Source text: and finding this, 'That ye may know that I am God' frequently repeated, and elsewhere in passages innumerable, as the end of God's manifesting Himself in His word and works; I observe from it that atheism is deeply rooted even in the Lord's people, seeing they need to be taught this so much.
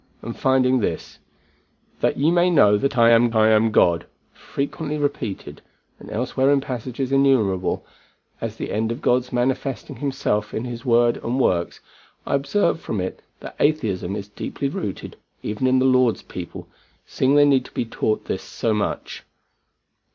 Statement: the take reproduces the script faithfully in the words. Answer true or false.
false